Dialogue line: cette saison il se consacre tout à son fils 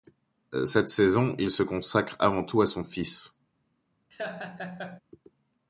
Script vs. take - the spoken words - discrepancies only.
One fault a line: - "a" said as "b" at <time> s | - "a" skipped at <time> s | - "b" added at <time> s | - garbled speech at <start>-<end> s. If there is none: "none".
- "avant" added at 2.2 s